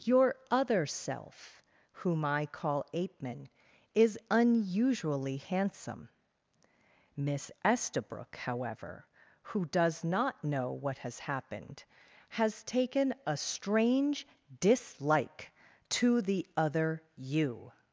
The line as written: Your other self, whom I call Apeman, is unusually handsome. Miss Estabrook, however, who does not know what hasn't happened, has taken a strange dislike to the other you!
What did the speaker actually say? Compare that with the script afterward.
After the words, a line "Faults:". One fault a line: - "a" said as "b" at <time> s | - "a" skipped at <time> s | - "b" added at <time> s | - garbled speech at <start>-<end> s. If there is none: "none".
Your other self, whom I call Apeman, is unusually handsome. Miss Estabrook, however, who does not know what has happened, has taken a strange dislike to the other you!
Faults:
- "hasn't" said as "has" at 11.0 s